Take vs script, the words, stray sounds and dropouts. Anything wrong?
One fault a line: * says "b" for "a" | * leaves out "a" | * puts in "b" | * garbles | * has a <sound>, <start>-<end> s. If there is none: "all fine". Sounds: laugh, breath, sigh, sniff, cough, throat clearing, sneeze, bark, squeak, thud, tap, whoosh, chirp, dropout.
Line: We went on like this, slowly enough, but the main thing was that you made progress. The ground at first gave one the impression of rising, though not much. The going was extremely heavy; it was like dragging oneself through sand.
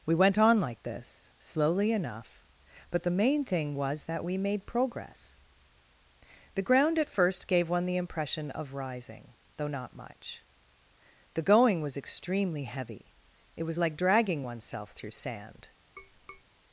* says "we" for "you"
* has a tap, 16.0-16.4 s